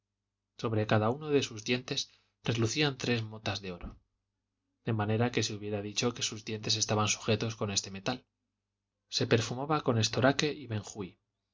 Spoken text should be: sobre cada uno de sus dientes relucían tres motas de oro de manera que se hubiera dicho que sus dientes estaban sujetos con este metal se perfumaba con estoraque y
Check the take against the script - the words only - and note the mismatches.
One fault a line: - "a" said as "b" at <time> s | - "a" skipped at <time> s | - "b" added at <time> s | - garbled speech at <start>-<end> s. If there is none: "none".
none